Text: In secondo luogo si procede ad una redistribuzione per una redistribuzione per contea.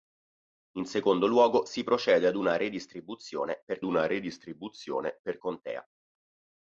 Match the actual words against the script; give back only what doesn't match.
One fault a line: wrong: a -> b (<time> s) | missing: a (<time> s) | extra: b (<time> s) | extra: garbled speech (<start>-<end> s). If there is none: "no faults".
no faults